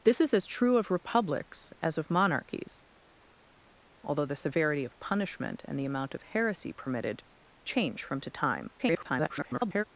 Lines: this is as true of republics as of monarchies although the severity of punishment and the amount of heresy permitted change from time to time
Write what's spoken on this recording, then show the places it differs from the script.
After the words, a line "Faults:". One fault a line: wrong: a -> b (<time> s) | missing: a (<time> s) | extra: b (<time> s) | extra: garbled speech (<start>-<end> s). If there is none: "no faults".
this is as true of republics as of monarchies although the severity of punishment and the amount of heresy permitted change from to time [garbled]
Faults:
missing: time (8.2 s)
extra: garbled speech (8.8-9.8 s)